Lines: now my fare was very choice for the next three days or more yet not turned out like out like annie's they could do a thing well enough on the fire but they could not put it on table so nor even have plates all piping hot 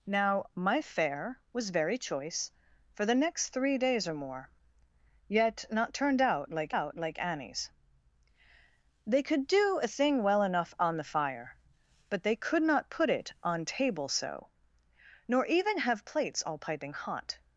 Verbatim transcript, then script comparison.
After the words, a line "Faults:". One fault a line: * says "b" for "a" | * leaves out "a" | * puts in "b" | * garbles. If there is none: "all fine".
now my fare was very choice for the next three days or more yet not turned out like out like annie's they could do a thing well enough on the fire but they could not put it on table so nor even have plates all piping hot
Faults:
all fine